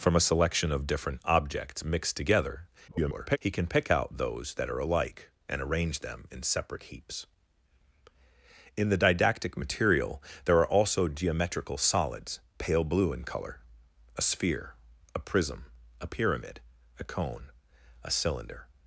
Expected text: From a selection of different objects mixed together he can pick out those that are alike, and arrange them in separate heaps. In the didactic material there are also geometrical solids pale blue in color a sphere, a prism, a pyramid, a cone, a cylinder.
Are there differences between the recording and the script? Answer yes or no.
yes